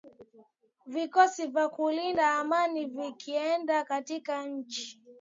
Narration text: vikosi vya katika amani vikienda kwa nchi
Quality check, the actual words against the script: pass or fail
fail